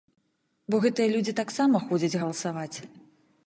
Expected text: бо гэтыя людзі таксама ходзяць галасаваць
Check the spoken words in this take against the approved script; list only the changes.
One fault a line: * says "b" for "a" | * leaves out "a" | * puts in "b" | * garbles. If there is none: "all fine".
all fine